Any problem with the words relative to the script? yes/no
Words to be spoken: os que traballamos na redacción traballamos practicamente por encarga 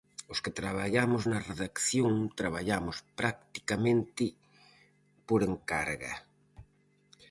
no